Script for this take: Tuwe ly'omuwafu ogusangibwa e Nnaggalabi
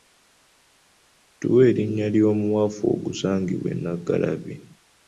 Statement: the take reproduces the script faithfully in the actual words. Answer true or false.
false